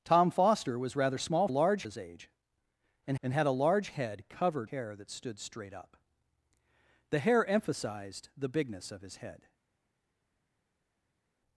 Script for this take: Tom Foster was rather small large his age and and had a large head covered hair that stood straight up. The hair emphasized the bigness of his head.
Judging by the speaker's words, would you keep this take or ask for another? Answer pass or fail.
pass